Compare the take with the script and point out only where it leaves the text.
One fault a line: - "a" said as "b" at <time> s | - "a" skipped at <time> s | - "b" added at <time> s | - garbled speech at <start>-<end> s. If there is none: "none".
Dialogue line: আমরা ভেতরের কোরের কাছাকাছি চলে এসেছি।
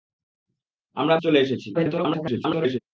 - "ভেতরের কোরের কাছাকাছি" skipped at 1.1 s
- garbled speech at 1.7-2.8 s